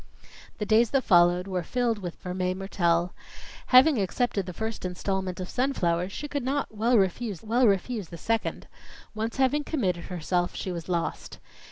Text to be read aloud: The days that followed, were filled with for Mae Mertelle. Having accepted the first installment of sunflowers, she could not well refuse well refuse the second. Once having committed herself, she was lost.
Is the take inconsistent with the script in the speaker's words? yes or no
no